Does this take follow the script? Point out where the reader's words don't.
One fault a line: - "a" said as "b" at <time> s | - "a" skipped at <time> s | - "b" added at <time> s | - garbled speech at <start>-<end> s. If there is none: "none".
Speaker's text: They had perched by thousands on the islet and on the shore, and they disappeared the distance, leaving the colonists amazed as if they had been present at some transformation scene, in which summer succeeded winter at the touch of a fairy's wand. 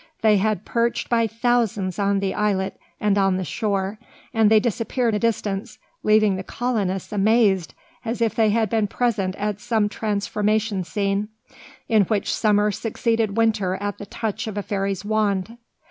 none